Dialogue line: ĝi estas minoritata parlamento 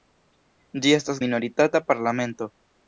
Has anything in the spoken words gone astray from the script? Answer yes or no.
no